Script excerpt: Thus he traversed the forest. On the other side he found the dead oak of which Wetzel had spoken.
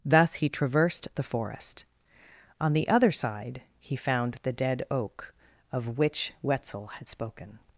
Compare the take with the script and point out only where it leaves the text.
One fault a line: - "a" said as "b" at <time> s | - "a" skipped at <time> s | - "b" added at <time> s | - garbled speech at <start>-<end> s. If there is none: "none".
none